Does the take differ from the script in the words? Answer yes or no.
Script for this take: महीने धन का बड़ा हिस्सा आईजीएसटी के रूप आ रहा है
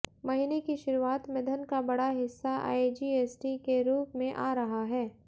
yes